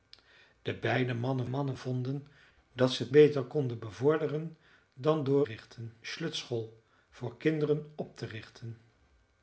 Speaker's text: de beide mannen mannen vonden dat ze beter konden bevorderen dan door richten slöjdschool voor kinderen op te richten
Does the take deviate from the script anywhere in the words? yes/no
no